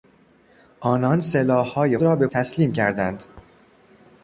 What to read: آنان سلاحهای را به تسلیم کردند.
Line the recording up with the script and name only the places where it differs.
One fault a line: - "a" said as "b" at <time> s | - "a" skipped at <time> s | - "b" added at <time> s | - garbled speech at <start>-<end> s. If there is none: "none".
none